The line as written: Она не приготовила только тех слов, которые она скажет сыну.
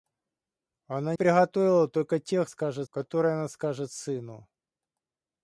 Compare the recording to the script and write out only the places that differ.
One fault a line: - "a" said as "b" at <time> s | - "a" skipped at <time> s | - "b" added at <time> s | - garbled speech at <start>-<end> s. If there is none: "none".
- "не" skipped at 1.1 s
- "слов" said as "скажет" at 2.5 s